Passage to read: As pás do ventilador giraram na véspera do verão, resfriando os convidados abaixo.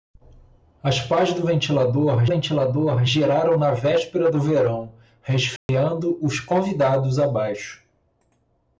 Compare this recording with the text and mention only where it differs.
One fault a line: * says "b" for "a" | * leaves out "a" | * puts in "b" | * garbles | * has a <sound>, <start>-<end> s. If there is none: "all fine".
* puts in "ventilador"
* has a dropout, 5.6-5.7 s